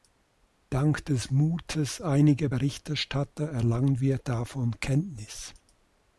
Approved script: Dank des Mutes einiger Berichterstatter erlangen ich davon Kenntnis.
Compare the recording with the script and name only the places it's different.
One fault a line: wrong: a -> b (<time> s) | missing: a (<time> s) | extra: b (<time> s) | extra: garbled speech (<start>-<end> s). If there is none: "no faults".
wrong: ich -> wir (4.0 s)